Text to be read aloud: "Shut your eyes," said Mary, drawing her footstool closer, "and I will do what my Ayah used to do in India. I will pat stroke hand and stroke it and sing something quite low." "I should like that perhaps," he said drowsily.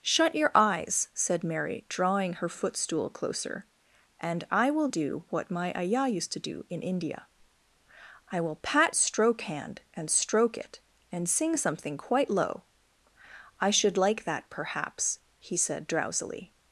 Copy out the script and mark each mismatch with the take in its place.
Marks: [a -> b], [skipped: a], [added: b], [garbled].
"Shut your eyes," said Mary, drawing her footstool closer, "and I will do what my Ayah used to do in India. I will pat stroke hand and stroke it and sing something quite low." "I should like that perhaps," he said drowsily.